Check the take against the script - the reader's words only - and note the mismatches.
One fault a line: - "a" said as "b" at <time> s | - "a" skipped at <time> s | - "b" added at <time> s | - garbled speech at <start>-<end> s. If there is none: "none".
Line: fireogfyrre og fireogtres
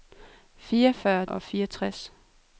none